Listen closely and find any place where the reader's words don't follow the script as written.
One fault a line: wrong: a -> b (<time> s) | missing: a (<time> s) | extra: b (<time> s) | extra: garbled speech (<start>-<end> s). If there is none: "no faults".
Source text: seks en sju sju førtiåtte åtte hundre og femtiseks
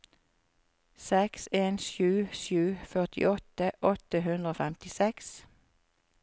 no faults